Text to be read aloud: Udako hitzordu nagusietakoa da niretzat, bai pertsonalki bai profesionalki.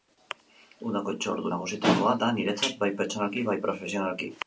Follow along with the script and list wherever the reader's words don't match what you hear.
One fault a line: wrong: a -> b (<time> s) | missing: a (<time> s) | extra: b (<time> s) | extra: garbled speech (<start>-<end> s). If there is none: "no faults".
no faults